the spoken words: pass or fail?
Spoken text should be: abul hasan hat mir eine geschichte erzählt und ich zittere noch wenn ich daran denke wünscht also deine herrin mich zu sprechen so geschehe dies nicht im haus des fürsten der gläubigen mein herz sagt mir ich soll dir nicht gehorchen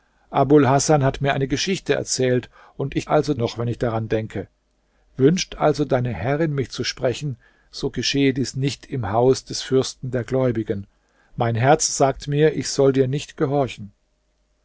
fail